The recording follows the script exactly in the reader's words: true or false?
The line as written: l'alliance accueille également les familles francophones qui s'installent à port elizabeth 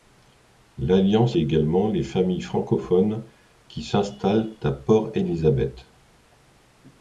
false